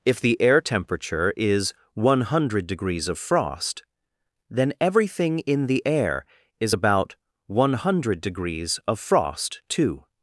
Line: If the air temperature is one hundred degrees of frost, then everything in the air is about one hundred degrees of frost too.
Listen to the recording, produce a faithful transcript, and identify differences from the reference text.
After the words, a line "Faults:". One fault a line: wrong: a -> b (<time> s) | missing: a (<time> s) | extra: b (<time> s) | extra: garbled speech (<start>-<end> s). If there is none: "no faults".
If the air temperature is one hundred degrees of frost, then everything in the air is about one hundred degrees of frost too.
Faults:
no faults